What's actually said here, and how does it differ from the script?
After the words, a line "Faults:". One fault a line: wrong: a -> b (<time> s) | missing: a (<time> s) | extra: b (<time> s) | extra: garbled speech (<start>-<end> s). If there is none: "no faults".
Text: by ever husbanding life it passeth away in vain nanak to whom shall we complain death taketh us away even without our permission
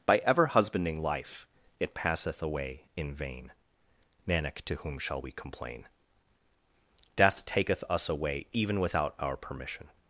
by ever husbanding life it passeth away in vain nanak to whom shall we complain death taketh us away even without our permission
Faults:
no faults